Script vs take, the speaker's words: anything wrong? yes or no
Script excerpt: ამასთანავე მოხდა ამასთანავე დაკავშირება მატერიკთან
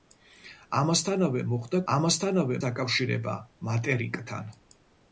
no